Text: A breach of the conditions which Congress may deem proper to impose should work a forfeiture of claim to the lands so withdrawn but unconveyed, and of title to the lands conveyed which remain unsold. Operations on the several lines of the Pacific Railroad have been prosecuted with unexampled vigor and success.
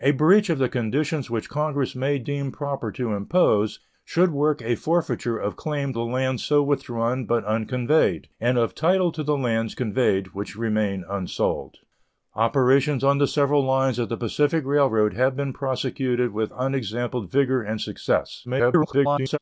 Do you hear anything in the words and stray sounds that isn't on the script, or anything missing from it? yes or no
yes